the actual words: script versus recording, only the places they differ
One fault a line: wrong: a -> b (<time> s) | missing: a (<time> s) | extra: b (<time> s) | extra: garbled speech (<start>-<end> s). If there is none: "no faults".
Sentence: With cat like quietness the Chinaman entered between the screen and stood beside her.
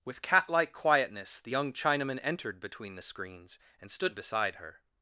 extra: young (1.5 s)
wrong: screen -> screens (3.0 s)